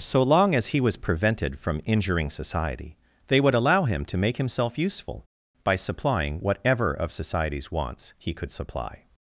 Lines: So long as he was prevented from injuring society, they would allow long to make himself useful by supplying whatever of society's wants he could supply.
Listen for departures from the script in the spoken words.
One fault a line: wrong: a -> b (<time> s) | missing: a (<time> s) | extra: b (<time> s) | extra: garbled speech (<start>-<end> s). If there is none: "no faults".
wrong: long -> him (3.8 s)